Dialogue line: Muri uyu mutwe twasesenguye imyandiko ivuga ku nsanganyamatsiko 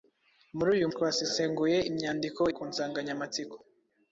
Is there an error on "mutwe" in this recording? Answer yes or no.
yes